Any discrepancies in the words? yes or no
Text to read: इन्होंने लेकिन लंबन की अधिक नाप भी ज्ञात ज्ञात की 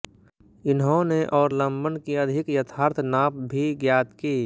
yes